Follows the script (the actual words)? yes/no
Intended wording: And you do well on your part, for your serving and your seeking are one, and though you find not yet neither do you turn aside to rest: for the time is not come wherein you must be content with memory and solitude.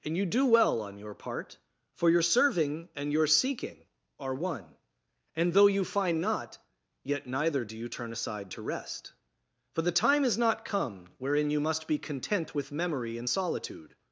yes